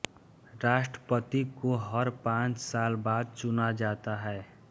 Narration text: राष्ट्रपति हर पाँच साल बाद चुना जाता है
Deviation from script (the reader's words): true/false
true